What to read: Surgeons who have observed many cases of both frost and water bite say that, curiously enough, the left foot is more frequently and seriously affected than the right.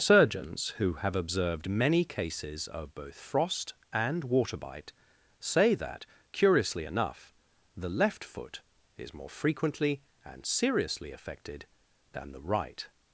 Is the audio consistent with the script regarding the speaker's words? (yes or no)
yes